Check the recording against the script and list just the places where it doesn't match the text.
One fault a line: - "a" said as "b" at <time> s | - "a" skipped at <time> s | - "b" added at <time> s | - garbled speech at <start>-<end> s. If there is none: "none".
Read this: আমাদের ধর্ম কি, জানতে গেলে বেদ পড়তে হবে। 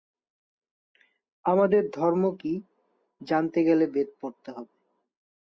none